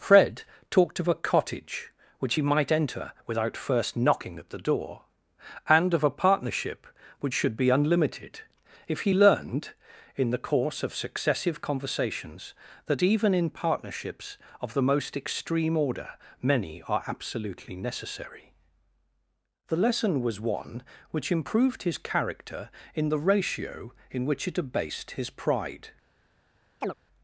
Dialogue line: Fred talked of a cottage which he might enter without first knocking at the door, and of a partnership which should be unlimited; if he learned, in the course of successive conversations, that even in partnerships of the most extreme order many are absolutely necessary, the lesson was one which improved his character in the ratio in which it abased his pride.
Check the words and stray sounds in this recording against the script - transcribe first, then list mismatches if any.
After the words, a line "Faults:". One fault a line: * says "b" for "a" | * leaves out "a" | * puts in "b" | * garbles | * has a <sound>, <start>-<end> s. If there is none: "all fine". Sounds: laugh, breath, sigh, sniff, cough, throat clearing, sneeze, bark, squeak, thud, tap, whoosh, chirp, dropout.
Fred talked of a cottage which he might enter without first knocking at the door, and of a partnership which should be unlimited; if he learned, in the course of successive conversations, that even in partnerships of the most extreme order many are absolutely necessary, the lesson was one which improved his character in the ratio in which it abased his pride.
Faults:
* has a chirp, 26.8-26.9 s